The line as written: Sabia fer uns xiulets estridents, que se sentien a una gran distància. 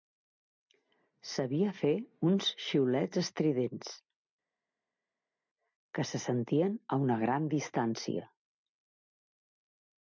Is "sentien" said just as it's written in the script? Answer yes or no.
yes